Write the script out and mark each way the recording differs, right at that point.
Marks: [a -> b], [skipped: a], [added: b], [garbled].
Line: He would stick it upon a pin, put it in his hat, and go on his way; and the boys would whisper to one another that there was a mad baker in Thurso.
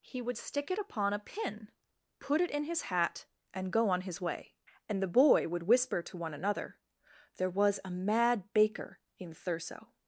He would stick it upon a pin, put it in his hat, and go on his way; and the [boys -> boy] would whisper to one another [skipped: that] there was a mad baker in Thurso.